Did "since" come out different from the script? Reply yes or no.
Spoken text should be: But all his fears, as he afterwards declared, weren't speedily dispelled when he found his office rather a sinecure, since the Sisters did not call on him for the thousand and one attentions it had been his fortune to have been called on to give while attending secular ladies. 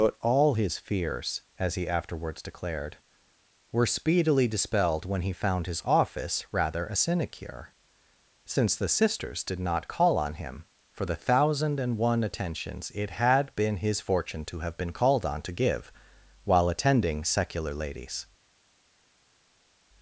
no